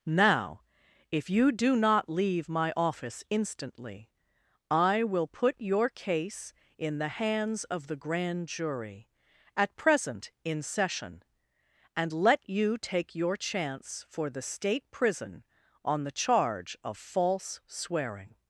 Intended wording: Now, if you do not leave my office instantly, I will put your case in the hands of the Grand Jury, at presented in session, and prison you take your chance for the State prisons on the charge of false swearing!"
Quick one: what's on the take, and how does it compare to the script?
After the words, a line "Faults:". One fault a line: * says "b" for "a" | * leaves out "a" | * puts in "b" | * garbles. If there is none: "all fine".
Now, if you do not leave my office instantly, I will put your case in the hands of the Grand Jury, at present in session, and let you take your chance for the State prison on the charge of false swearing!"
Faults:
* says "present" for "presented"
* says "let" for "prison"
* says "prison" for "prisons"